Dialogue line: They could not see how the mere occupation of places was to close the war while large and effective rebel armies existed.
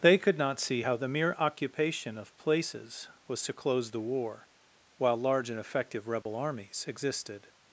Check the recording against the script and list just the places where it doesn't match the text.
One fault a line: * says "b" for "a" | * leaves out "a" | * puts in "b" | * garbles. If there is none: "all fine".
all fine